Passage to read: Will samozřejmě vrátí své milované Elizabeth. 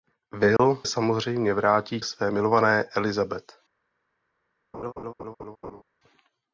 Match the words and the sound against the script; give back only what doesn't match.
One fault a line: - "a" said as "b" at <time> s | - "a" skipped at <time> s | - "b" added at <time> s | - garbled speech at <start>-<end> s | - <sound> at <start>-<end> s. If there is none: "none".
- dropout at 0.6-0.6 s
- laugh at 4.7-5.8 s